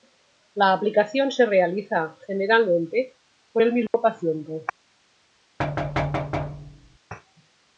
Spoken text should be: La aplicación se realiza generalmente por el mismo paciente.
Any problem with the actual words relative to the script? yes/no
no